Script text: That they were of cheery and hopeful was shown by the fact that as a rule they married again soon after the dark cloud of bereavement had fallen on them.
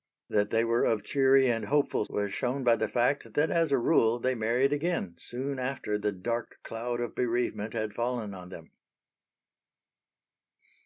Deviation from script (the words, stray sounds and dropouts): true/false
false